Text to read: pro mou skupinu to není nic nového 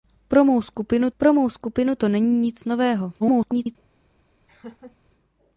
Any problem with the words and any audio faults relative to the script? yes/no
yes